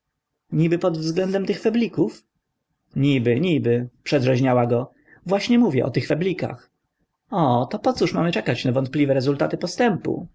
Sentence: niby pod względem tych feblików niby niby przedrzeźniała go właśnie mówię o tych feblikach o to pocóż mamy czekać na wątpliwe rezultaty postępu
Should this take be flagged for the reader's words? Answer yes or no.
no